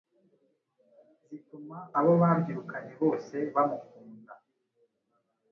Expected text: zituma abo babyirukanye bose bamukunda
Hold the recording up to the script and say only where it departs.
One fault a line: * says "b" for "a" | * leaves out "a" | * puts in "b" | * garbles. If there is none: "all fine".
all fine